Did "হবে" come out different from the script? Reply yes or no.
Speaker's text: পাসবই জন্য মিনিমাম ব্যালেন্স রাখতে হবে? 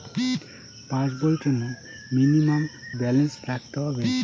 no